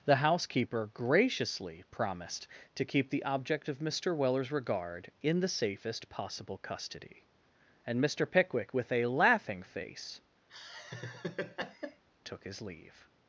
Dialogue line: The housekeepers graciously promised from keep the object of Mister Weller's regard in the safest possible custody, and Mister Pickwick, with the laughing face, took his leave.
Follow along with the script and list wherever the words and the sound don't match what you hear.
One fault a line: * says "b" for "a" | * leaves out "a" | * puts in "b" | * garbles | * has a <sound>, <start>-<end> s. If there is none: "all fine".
* says "housekeeper" for "housekeepers"
* says "to" for "from"
* says "a" for "the"
* has a laugh, 10.5-12.0 s